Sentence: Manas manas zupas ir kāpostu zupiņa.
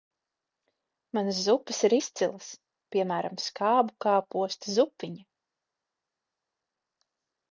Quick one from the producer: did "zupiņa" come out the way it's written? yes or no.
yes